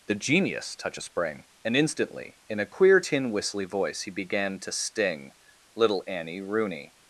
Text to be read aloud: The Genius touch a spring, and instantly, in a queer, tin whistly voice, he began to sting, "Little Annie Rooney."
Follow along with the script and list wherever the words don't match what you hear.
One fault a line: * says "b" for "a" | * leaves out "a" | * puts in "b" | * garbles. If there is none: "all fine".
all fine